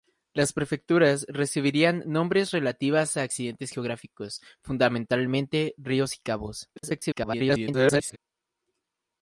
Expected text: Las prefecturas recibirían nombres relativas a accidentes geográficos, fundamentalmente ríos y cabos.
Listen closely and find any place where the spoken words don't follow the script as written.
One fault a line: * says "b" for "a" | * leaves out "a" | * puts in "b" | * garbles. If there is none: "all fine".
* garbles